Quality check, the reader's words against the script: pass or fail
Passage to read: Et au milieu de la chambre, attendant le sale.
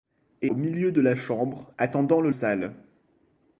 pass